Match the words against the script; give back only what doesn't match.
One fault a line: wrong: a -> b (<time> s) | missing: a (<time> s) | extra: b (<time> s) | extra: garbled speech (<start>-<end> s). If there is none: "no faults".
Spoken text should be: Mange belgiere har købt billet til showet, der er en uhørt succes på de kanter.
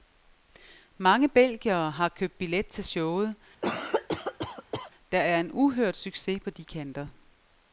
no faults